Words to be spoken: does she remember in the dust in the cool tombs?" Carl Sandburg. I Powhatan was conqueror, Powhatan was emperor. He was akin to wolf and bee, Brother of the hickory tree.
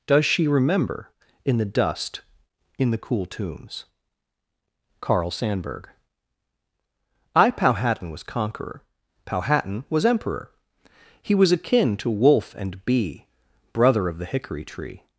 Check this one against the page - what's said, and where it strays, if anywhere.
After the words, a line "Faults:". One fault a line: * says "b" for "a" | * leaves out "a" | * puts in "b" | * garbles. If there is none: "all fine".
does she remember in the dust in the cool tombs?" Carl Sandburg. I Powhatan was conqueror, Powhatan was emperor. He was akin to wolf and bee, Brother of the hickory tree.
Faults:
all fine